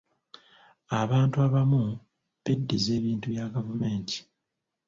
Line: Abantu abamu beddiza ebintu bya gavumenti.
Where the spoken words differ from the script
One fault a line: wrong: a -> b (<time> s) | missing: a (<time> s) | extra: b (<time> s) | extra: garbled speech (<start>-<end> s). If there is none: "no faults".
no faults